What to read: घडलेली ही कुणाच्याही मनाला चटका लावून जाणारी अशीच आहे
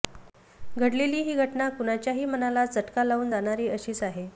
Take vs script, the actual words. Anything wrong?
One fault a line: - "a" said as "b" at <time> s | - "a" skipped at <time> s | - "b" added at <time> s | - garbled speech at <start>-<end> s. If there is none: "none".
- "घटना" added at 1.4 s